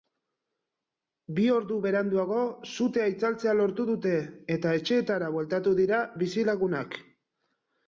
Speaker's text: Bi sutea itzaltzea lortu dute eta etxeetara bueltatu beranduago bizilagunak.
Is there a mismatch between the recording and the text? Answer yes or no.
yes